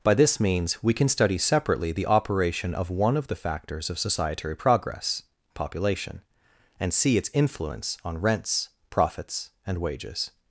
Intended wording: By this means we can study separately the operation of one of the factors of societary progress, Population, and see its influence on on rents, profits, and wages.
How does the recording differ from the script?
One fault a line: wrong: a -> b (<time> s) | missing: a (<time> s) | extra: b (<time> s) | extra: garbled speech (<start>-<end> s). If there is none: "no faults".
missing: on (8.2 s)